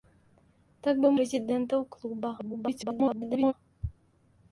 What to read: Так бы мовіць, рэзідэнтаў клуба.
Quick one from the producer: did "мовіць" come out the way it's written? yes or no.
no